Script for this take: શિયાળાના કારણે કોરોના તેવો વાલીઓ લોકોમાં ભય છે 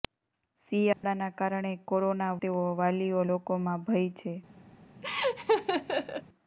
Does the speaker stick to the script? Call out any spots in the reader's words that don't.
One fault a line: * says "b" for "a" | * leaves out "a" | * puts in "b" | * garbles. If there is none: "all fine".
all fine